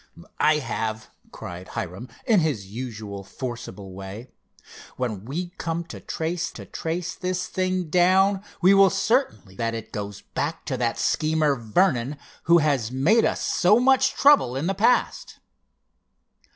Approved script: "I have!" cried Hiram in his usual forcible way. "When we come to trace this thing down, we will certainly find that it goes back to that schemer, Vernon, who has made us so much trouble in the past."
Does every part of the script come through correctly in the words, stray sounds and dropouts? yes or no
no